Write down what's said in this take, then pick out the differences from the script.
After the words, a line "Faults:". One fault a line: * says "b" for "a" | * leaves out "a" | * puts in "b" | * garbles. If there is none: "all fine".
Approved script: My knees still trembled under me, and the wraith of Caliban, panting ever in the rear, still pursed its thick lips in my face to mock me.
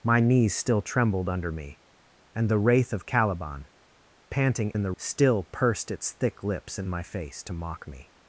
My knees still trembled under me, and the wraith of Caliban, panting in the still pursed its thick lips in my face to mock me.
Faults:
* leaves out "ever"
* leaves out "rear"